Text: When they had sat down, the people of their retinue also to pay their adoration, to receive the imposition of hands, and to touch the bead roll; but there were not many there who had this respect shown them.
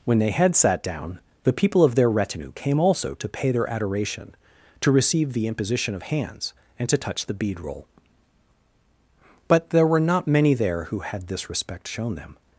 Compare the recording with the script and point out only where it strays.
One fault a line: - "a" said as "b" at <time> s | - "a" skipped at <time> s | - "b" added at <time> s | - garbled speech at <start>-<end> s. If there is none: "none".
- "came" added at 2.5 s